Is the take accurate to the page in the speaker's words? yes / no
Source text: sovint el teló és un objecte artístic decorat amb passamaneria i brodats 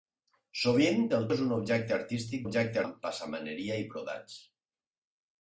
no